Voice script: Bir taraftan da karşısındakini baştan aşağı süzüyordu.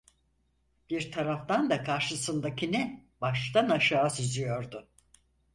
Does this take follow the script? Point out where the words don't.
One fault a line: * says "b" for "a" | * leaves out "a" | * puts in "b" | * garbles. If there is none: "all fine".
all fine